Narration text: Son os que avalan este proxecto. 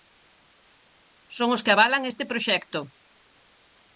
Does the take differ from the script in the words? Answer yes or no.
no